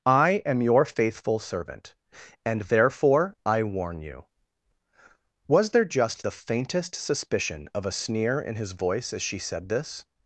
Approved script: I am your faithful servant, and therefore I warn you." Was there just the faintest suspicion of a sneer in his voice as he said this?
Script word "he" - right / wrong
wrong